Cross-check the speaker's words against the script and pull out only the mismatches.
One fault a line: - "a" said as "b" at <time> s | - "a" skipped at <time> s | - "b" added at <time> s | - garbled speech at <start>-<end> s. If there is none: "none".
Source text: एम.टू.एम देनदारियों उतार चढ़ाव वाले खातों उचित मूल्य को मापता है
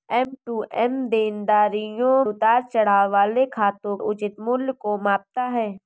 none